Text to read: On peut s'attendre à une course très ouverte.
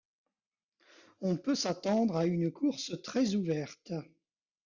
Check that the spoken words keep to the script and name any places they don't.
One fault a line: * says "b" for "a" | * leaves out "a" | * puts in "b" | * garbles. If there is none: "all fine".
all fine